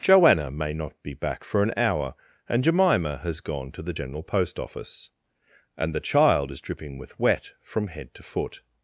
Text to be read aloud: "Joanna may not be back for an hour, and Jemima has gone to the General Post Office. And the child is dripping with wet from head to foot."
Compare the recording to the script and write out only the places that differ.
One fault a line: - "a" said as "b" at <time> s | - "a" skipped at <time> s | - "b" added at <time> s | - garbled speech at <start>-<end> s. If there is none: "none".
none